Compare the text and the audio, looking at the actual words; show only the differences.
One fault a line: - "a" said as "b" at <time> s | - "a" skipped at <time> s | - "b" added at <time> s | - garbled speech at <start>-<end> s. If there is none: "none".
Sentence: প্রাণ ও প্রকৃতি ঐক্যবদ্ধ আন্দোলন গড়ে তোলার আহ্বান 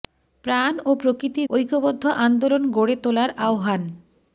none